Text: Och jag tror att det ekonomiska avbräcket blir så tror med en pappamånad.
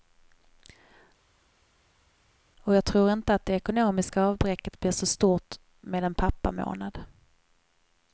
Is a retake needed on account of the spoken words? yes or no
yes